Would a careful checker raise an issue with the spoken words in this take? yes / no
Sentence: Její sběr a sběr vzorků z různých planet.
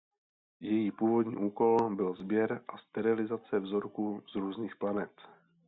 yes